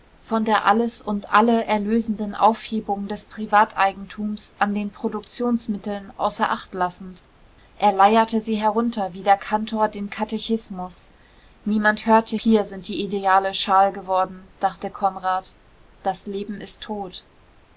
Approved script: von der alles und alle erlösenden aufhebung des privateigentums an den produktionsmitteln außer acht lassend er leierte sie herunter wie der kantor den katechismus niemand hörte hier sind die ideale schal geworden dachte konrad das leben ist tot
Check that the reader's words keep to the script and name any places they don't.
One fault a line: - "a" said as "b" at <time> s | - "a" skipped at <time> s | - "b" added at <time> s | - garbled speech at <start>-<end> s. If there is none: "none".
none